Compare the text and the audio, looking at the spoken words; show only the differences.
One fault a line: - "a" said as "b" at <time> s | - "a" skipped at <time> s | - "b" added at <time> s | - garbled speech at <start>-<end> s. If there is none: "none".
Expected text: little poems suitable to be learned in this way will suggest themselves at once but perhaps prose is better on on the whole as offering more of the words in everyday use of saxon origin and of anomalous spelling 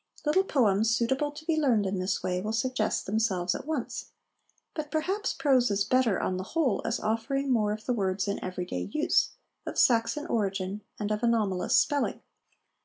- "on" skipped at 6.4 s